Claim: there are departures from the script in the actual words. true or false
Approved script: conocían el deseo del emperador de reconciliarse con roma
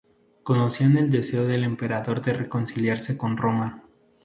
false